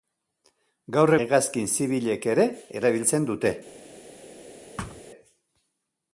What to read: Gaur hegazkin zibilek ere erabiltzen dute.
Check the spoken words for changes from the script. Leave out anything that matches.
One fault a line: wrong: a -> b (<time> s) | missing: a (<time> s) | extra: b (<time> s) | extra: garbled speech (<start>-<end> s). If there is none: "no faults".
no faults